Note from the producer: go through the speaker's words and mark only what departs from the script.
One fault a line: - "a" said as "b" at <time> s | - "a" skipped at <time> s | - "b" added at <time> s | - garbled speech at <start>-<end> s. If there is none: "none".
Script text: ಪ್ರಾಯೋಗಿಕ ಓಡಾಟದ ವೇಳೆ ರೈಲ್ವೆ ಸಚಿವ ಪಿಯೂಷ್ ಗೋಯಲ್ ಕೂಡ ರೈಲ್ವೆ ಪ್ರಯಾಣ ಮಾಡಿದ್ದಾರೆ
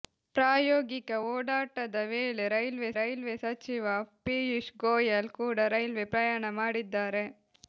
- "ರೈಲ್ವೆ" added at 2.9 s